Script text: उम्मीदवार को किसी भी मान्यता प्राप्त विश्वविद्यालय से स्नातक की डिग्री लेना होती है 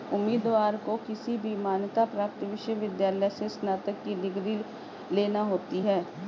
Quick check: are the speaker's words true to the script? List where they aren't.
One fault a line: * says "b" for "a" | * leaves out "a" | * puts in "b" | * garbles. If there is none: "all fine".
all fine